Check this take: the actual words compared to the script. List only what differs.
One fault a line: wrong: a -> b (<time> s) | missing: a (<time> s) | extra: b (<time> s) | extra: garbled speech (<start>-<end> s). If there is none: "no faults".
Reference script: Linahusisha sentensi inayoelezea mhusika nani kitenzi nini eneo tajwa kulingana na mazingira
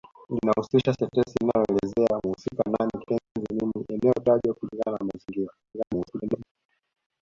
extra: garbled speech (5.6-6.5 s)